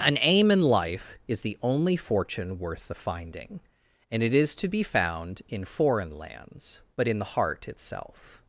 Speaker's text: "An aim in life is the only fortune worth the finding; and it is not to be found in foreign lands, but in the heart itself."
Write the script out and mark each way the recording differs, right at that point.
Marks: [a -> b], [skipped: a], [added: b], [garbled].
"An aim in life is the only fortune worth the finding; and it is [skipped: not] to be found in foreign lands, but in the heart itself."